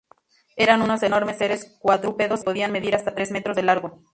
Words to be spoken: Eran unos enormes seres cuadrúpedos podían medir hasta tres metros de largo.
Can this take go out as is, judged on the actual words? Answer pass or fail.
pass